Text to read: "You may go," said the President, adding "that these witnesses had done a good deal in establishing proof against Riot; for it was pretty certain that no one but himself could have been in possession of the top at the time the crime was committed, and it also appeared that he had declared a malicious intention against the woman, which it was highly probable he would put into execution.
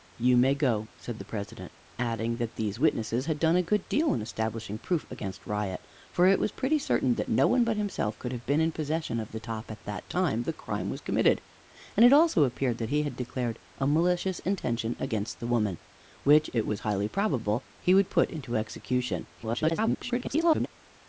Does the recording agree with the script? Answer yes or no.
no